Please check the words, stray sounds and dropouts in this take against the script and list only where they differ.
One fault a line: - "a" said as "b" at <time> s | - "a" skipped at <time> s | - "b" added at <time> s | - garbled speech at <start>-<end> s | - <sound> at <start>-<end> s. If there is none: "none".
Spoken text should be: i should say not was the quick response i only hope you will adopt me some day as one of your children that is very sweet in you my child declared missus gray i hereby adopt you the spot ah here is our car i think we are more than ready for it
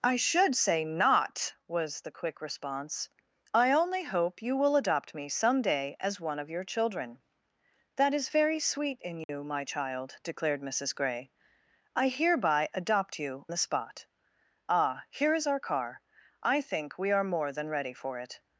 - dropout at 9.2-9.3 s